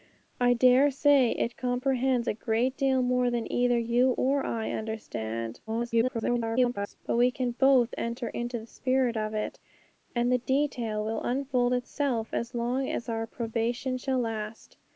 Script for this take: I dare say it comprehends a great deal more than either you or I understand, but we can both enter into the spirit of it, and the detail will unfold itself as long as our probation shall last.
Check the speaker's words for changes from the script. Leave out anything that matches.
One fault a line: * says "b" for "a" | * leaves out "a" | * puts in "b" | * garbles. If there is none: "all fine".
* garbles